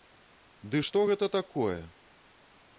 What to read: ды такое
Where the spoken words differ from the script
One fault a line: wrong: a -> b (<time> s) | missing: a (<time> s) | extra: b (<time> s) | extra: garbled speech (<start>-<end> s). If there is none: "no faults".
extra: што гэта (0.9 s)